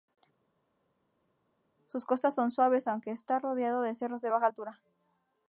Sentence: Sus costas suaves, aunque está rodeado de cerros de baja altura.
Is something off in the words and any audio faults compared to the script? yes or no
yes